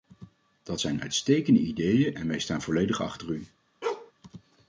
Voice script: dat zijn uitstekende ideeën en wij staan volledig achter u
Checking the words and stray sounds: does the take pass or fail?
fail